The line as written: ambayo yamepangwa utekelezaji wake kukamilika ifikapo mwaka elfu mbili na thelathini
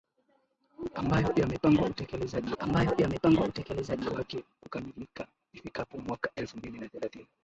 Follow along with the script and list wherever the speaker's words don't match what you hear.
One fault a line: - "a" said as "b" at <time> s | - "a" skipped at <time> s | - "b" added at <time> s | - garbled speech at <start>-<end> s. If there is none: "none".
- "ambayo yamepangwa utekelezaji" added at 2.6 s